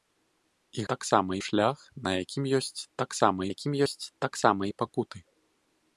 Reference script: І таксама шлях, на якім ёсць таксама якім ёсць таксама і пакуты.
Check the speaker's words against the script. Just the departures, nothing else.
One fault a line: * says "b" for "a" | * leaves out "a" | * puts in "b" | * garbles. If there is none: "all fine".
all fine